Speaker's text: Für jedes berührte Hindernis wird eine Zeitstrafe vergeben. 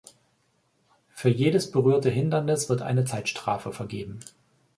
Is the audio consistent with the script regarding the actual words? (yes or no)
yes